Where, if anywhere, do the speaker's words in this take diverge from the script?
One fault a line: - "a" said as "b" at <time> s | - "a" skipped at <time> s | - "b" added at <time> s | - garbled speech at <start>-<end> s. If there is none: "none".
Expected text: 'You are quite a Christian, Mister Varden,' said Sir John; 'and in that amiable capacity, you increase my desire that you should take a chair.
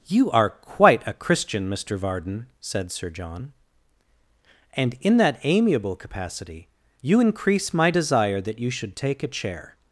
none